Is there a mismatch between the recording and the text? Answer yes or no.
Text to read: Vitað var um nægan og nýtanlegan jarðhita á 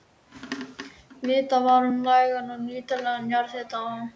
no